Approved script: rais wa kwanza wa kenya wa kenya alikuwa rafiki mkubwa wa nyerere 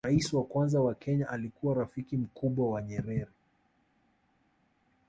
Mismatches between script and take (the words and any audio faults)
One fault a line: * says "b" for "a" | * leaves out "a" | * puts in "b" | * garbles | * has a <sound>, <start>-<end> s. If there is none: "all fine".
* leaves out "wa kenya"